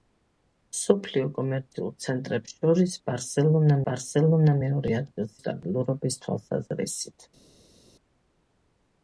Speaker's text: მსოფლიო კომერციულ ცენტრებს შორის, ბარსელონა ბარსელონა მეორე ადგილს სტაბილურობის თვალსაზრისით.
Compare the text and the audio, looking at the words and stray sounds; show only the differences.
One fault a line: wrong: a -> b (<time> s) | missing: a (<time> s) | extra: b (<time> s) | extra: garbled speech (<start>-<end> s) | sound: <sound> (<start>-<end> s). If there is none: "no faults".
no faults